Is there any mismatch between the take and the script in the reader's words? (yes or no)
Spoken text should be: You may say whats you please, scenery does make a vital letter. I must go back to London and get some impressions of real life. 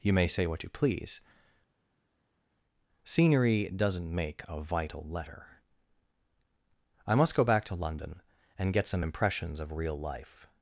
yes